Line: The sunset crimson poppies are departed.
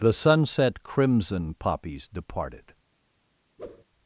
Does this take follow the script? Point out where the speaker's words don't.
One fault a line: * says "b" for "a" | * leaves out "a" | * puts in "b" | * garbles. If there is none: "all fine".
* leaves out "are"